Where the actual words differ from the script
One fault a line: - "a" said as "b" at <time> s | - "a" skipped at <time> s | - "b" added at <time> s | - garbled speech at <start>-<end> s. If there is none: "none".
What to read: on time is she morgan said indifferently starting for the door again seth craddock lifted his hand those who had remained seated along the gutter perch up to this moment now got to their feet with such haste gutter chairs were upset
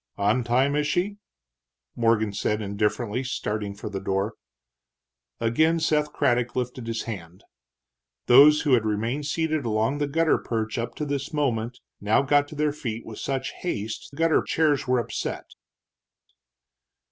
none